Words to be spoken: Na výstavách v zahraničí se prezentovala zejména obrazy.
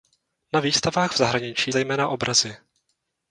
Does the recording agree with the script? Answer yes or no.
no